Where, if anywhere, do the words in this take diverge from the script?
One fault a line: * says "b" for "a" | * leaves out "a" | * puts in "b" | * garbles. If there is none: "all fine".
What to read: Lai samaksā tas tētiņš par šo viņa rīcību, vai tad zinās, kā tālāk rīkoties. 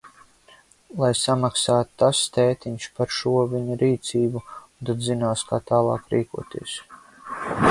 * says "un" for "vai"